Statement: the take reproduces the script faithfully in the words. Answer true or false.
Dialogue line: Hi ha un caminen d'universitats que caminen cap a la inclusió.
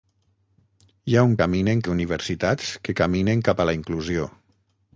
true